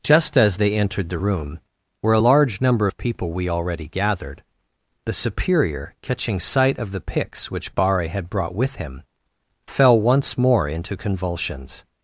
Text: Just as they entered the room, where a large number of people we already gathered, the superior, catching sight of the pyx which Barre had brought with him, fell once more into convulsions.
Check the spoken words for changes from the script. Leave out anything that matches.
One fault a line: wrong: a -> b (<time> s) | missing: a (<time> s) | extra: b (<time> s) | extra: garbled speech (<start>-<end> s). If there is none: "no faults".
no faults